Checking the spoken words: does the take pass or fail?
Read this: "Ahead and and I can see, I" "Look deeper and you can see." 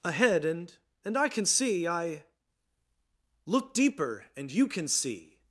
pass